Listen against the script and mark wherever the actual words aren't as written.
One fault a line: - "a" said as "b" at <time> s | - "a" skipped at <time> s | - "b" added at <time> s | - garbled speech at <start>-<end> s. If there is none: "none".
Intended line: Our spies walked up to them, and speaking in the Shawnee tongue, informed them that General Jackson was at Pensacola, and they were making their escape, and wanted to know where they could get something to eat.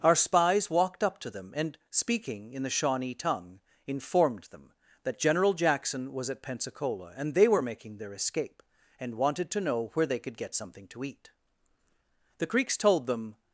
- "The Creeks told them" added at 12.4 s